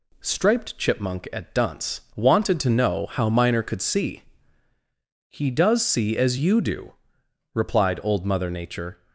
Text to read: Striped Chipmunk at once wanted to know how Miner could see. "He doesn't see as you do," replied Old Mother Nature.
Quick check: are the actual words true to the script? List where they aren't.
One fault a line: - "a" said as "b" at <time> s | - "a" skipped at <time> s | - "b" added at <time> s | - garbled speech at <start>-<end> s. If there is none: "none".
- "once" said as "dunce" at 1.5 s
- "doesn't" said as "does" at 5.5 s